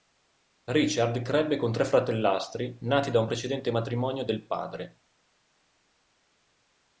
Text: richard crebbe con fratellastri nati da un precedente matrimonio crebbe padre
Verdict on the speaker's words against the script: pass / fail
fail